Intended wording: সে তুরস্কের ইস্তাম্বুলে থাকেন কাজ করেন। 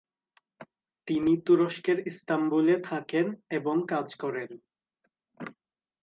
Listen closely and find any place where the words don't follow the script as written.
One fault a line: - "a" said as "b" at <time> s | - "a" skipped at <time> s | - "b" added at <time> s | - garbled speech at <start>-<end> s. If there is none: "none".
- "সে" said as "তিনি" at 1.1 s
- "এবং" added at 3.5 s